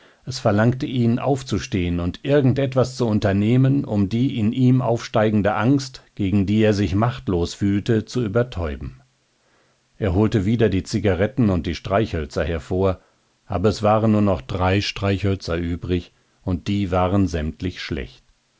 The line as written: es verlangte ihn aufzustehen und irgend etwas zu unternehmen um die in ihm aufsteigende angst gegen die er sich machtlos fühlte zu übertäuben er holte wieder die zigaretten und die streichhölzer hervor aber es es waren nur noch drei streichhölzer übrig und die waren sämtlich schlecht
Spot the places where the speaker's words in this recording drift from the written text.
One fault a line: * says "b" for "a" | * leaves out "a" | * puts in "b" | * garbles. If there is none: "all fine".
* leaves out "es"